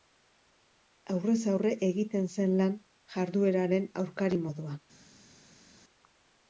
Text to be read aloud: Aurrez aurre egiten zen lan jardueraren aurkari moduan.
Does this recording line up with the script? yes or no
yes